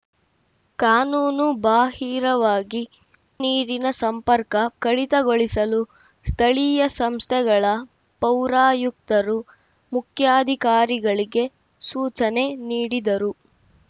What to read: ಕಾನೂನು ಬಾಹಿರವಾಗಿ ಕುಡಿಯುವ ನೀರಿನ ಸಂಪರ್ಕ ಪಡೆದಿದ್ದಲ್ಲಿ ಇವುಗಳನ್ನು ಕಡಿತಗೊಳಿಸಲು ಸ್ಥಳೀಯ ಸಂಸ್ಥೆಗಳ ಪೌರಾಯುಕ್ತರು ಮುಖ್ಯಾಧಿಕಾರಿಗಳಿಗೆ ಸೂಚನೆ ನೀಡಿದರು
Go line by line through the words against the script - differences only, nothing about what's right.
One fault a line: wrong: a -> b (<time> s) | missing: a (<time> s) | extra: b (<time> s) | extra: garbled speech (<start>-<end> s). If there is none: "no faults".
missing: ಕುಡಿಯುವ (2.8 s)
missing: ಪಡೆದಿದ್ದಲ್ಲಿ ಇವುಗಳನ್ನು (4.5 s)